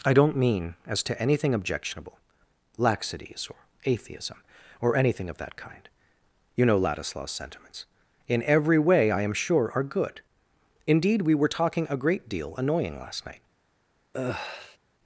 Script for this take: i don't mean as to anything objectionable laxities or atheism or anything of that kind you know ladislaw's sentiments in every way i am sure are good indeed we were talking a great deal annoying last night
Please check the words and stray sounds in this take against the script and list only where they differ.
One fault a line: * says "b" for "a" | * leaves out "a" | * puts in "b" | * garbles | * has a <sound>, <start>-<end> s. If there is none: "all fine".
* has a sigh, 14.1-14.8 s